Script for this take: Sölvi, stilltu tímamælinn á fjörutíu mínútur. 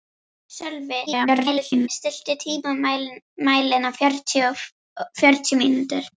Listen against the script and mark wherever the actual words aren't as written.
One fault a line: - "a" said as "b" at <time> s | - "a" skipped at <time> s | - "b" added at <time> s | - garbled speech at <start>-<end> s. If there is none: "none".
- garbled speech at 1.1-1.9 s